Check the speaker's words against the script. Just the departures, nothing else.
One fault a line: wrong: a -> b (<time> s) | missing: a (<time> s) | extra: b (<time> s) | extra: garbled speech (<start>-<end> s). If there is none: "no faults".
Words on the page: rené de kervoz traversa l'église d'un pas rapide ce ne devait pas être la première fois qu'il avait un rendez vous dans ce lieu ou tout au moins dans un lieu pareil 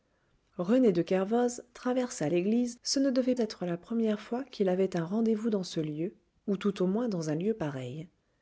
missing: d'un pas rapide (2.8 s)
missing: pas (3.4 s)